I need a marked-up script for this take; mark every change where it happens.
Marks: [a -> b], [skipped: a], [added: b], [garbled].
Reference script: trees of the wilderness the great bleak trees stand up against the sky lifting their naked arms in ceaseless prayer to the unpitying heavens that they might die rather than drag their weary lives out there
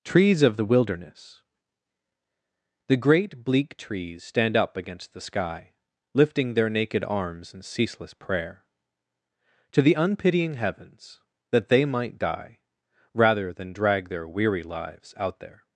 trees of the wilderness the great bleak trees stand up against the sky lifting their naked arms in ceaseless prayer to the unpitying heavens that they might die rather than drag their weary lives out there